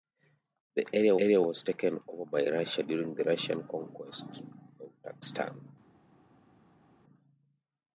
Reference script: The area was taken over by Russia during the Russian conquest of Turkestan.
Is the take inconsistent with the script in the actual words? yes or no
yes